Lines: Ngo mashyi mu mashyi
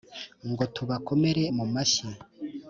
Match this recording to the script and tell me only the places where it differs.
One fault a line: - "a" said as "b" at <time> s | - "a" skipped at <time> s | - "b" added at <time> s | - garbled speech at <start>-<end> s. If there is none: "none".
- "mashyi" said as "tubakomere" at 0.8 s